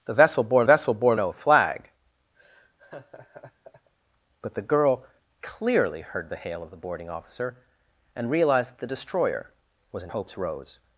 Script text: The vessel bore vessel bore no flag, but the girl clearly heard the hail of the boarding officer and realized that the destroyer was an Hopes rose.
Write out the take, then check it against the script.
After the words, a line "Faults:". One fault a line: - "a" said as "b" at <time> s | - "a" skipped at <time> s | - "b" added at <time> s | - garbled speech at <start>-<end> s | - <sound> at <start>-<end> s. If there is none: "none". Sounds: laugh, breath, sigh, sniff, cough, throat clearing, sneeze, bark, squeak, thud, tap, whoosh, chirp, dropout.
The vessel bore vessel bore no flag, but the girl clearly heard the hail of the boarding officer and realized that the destroyer was an Hopes rose.
Faults:
- laugh at 2.3-3.9 s